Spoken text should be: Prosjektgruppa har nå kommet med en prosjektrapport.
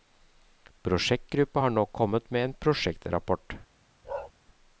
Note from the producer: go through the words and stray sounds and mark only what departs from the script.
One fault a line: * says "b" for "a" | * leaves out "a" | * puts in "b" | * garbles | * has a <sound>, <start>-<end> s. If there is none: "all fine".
* has a bark, 4.0-4.3 s